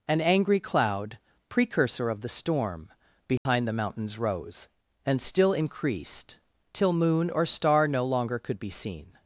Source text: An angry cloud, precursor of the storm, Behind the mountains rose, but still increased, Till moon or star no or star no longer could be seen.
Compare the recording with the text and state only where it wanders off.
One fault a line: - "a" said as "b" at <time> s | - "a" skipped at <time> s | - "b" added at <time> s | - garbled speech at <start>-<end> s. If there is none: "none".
- "but" said as "and" at 5.0 s
- "or star no" skipped at 8.1 s